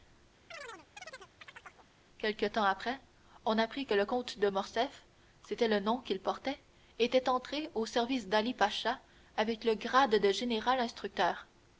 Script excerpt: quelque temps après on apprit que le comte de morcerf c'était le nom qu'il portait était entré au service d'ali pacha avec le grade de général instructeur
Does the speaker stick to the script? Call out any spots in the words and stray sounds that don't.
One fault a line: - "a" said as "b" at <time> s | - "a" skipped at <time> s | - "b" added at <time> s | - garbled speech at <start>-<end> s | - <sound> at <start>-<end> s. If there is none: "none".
- chirp at 0.5-1.9 s